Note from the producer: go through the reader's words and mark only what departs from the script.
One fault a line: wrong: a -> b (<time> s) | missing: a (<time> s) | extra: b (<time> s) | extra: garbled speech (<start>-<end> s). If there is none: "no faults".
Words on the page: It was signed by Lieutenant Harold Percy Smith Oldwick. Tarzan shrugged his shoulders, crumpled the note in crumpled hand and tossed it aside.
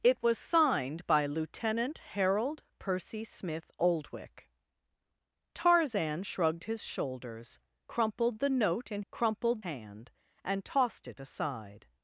no faults